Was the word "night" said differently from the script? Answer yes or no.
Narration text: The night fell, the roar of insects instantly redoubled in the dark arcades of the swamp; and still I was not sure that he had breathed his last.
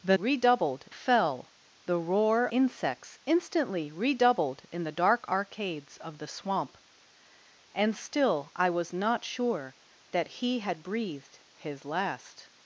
yes